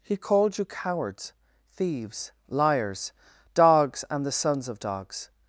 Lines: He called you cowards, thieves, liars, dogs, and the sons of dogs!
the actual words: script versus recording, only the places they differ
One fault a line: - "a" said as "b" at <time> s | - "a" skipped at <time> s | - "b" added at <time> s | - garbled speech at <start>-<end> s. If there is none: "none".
none